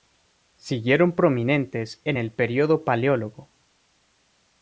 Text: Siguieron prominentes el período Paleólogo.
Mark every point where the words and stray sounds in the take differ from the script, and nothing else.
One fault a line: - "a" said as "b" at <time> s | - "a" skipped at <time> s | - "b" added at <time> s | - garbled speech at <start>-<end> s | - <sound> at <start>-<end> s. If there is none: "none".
- "en" added at 2.0 s